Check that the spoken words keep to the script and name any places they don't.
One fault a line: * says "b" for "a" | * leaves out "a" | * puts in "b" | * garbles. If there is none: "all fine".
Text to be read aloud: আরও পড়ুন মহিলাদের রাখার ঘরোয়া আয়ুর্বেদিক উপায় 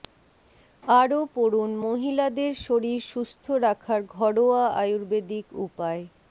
* puts in "শরীর সুস্থ"